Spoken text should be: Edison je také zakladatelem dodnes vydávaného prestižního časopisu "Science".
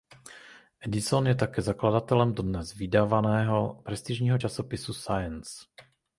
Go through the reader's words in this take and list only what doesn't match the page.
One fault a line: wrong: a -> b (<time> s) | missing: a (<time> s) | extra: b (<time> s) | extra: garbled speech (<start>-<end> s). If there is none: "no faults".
no faults